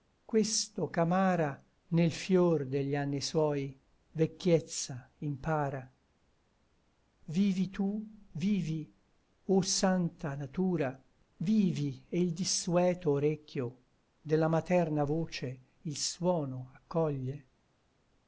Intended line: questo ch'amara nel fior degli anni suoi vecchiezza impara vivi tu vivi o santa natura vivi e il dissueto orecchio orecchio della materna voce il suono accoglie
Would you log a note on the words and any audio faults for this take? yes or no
yes